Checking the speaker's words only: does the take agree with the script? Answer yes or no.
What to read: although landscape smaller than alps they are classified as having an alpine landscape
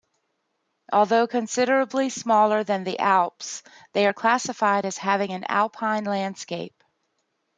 no